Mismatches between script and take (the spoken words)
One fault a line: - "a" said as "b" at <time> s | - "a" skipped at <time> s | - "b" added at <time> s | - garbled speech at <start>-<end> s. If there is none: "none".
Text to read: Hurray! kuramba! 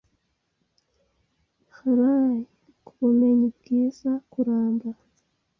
- "kubumenyi bwiza" added at 2.9 s